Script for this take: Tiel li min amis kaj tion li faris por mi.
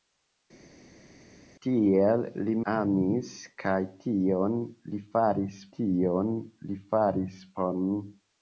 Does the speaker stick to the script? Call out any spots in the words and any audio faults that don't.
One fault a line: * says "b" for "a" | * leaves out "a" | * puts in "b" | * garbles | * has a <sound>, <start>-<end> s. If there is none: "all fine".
* leaves out "min"
* puts in "tion li faris"